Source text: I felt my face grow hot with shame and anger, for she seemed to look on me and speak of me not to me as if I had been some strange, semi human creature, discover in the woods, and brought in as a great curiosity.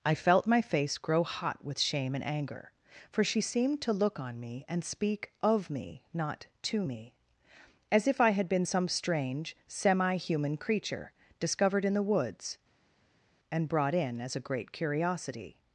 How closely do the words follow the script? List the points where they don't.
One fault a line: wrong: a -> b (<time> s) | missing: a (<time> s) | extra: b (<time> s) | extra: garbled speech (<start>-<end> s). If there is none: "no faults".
wrong: discover -> discovered (11.4 s)